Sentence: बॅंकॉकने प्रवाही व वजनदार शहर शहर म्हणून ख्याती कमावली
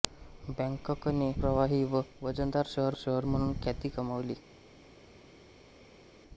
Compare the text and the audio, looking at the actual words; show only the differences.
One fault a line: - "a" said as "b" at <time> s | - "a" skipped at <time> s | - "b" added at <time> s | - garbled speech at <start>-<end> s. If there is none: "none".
none